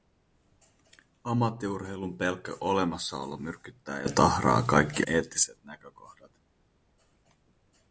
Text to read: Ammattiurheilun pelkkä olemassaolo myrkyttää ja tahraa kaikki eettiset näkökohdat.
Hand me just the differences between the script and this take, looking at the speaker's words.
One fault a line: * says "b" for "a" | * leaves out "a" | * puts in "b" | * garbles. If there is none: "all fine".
all fine